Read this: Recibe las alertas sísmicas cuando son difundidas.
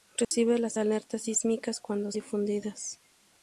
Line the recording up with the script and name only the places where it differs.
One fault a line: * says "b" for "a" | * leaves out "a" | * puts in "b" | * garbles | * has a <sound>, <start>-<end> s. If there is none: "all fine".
* has a dropout, 0.2-0.3 s
* leaves out "son"